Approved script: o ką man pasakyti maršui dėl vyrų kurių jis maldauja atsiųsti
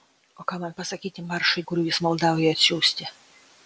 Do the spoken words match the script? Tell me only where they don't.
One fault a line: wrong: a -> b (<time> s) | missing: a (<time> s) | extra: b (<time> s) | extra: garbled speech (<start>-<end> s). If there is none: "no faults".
missing: dėl vyrų (1.6 s)